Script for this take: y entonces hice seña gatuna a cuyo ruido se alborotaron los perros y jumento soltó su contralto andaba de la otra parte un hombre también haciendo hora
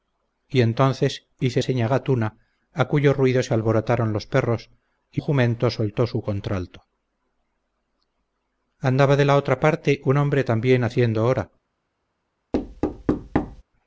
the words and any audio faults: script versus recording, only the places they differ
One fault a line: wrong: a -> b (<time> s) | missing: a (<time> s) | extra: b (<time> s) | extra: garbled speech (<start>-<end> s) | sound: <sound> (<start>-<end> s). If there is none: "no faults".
sound: thud (12.5-13.6 s)